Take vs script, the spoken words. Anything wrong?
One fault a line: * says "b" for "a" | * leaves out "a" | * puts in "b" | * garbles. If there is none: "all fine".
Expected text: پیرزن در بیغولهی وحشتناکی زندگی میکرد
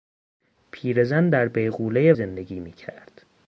* leaves out "وحشتناکی"